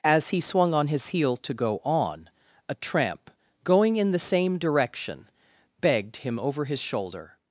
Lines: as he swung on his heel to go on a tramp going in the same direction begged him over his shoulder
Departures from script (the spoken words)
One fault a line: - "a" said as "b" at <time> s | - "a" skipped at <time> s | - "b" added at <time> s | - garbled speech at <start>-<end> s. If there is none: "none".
none